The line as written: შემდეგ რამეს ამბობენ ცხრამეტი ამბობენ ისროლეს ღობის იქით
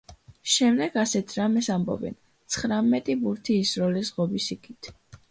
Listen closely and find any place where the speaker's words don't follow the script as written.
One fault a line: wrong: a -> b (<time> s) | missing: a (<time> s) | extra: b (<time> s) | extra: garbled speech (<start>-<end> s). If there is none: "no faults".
extra: ასეთ (1.0 s)
wrong: ამბობენ -> ბურთი (3.3 s)